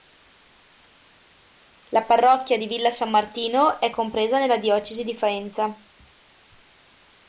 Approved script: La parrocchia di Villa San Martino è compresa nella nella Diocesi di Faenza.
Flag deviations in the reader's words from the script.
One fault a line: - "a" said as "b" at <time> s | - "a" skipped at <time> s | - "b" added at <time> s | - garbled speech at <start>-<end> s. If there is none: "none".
- "nella" skipped at 4.6 s